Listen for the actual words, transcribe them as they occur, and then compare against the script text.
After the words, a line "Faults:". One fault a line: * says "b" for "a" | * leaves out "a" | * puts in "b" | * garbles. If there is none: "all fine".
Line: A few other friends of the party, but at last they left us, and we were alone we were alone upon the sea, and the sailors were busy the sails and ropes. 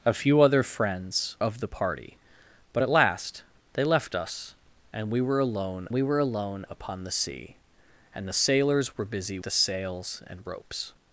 A few other friends of the party, but at last they left us, and we were alone we were alone upon the sea, and the sailors were busy the sails and ropes.
Faults:
all fine